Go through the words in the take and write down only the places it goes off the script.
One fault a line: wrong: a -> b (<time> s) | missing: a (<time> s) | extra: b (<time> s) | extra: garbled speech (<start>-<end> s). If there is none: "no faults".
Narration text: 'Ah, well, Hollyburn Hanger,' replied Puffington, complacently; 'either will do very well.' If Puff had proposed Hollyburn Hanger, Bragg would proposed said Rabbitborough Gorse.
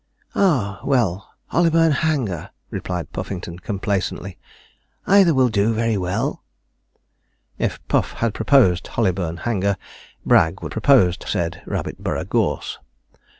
no faults